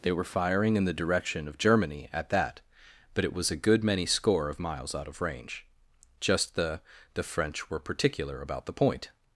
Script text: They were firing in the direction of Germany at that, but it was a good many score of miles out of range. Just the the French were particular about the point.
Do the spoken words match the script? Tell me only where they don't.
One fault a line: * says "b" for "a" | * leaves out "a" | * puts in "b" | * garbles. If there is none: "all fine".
all fine